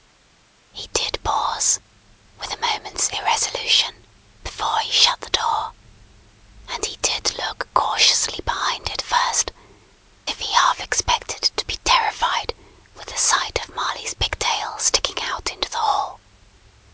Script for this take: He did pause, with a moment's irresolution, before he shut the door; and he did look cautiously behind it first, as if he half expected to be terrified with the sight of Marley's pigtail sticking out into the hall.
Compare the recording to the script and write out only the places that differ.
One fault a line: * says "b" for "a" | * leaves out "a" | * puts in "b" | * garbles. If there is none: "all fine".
* leaves out "as"